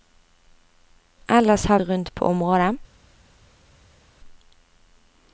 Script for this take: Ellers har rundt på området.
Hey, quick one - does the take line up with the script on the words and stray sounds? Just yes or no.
yes